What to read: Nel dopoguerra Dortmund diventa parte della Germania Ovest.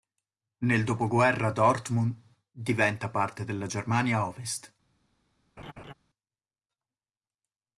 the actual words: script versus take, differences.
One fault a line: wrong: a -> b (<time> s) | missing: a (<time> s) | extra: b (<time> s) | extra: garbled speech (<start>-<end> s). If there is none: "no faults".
no faults